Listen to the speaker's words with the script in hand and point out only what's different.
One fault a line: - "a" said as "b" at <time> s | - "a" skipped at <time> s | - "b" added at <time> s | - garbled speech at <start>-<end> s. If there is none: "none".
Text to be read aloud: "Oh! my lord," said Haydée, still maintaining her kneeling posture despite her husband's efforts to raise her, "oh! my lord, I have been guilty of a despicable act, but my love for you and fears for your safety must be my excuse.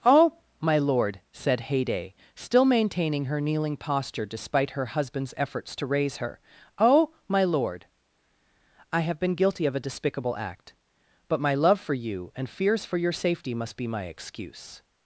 none